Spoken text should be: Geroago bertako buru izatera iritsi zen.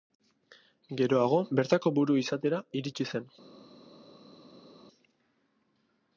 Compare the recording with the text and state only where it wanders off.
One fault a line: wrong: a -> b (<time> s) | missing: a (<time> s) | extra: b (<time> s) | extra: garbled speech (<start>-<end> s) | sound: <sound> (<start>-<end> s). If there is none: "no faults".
no faults